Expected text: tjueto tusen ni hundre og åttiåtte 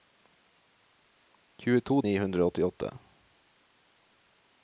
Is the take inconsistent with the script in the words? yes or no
yes